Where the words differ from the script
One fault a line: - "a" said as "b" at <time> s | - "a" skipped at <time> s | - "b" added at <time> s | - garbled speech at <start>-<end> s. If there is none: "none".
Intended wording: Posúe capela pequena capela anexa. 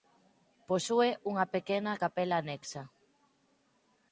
- "capela" said as "unha" at 1.3 s